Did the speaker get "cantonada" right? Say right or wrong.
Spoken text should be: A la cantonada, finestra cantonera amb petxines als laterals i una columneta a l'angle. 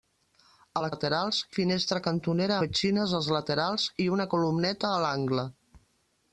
wrong